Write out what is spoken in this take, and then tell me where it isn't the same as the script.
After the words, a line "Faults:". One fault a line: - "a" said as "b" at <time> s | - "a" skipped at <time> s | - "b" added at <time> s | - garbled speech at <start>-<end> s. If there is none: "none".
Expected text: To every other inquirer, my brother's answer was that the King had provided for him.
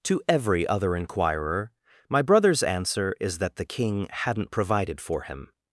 To every other inquirer, my brother's answer is that the King hadn't provided for him.
Faults:
- "was" said as "is" at 3.2 s
- "had" said as "hadn't" at 4.1 s